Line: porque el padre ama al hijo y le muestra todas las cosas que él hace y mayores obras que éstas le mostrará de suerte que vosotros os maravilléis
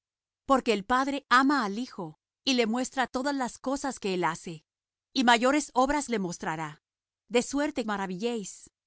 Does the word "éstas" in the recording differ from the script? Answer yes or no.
yes